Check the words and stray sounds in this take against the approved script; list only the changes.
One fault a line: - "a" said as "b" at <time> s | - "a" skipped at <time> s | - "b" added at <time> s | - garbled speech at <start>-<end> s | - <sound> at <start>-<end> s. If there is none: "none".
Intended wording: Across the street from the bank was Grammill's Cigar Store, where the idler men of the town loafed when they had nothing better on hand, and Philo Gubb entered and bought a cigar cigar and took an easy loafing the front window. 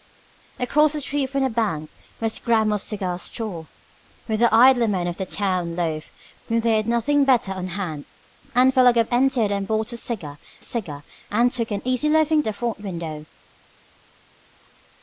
none